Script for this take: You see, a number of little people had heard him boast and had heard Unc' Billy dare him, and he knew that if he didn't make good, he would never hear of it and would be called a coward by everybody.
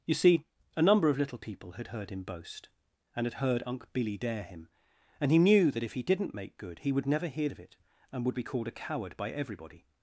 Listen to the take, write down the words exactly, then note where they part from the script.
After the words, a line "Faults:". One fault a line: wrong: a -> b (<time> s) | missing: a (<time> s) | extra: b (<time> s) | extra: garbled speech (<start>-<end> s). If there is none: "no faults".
You see, a number of little people had heard him boast and had heard Unc' Billy dare him, and he knew that if he didn't make good, he would never hear of it and would be called a coward by everybody.
Faults:
no faults